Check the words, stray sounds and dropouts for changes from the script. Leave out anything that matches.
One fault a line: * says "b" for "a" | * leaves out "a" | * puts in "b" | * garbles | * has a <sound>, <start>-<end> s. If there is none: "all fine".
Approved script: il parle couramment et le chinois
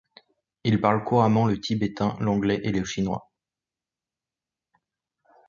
* puts in "le tibétain l'anglais"